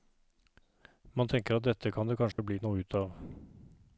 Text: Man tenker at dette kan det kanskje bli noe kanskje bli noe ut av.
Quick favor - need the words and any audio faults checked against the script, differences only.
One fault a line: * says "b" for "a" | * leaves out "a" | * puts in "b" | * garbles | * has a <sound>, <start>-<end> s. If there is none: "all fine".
* has a dropout, 2.3-2.4 s
* leaves out "kanskje bli noe"